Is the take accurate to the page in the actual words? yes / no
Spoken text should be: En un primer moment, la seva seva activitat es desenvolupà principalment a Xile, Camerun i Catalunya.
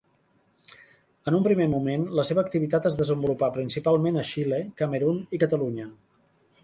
no